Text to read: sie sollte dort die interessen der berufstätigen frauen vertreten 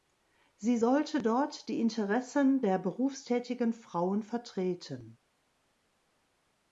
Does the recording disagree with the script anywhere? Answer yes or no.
no